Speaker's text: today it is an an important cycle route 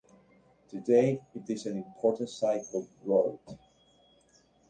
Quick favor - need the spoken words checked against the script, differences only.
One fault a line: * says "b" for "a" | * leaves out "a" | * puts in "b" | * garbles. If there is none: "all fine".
* leaves out "an"